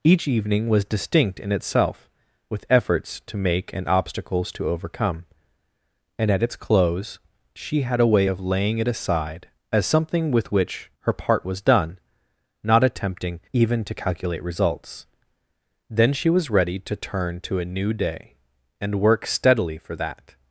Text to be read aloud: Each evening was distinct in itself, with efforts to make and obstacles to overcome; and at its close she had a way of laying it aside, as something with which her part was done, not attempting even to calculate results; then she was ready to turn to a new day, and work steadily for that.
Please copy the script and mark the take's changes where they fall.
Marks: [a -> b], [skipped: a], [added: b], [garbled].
Each evening was distinct in itself, with efforts to make and obstacles to overcome; and at its close she had a way of laying it aside, as something with which her part was done, not attempting even to calculate results; then she was ready to turn to a new day, and work steadily for that.